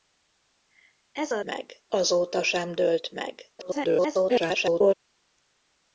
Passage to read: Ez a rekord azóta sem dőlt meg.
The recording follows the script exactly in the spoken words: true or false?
false